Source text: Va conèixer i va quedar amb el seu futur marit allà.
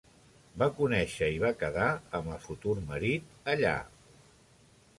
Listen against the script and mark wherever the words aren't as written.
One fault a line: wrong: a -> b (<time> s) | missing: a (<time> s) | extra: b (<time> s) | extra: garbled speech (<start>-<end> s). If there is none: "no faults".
missing: seu (2.4 s)